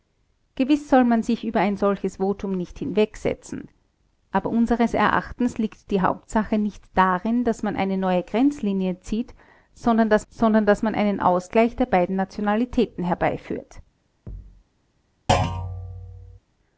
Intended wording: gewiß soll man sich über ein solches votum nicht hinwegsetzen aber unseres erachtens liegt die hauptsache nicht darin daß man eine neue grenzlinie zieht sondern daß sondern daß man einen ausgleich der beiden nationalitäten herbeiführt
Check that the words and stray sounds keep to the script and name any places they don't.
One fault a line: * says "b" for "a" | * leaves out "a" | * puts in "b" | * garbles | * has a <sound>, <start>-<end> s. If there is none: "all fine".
* has a thud, 14.3-14.6 s
* has a thud, 15.3-16.4 s